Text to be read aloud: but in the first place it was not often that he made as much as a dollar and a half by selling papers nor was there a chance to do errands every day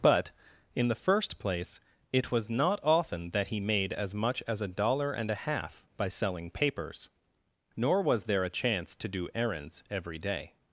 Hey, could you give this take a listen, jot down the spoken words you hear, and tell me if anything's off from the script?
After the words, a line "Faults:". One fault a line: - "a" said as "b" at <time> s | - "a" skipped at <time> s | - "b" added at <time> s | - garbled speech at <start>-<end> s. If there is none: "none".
but in the first place it was not often that he made as much as a dollar and a half by selling papers nor was there a chance to do errands every day
Faults:
none